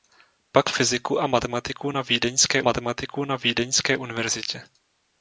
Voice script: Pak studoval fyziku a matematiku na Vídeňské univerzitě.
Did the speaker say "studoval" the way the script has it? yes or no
no